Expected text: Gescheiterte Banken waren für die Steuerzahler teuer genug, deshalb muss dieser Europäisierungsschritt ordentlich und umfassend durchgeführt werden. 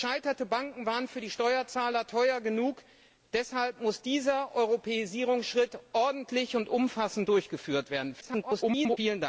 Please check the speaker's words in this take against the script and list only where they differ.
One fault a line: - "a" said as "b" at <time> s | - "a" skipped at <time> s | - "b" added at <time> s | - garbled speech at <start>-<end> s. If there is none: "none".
- garbled speech at 8.2-9.0 s